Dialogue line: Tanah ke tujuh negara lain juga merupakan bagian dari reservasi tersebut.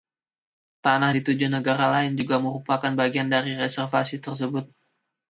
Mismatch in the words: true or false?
true